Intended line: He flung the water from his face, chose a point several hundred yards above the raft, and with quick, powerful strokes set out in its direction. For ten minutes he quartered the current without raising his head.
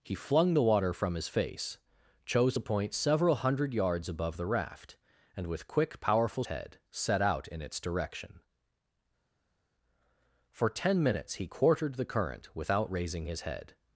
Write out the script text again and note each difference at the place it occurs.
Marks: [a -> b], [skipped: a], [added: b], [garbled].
He flung the water from his face, chose a point several hundred yards above the raft, and with quick, powerful [strokes -> head] set out in its direction. For ten minutes he quartered the current without raising his head.